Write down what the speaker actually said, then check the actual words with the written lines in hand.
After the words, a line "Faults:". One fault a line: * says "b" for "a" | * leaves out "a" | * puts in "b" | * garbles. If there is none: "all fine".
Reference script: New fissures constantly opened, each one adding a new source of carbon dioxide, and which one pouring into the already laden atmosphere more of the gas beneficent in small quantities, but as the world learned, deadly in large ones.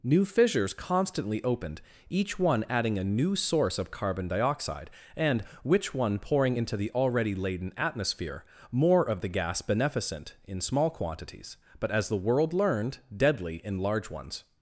New fissures constantly opened, each one adding a new source of carbon dioxide, and which one pouring into the already laden atmosphere more of the gas beneficent in small quantities, but as the world learned, deadly in large ones.
Faults:
all fine